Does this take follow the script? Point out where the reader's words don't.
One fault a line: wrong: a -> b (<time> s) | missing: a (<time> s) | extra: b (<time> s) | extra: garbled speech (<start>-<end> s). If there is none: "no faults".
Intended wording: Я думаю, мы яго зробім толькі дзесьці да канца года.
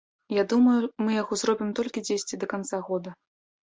no faults